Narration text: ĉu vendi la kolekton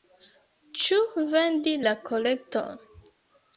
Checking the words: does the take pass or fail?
pass